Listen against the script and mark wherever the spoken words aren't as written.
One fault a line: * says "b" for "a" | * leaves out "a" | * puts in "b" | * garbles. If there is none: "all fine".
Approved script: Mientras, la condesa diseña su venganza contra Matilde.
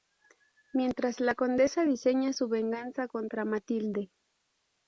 all fine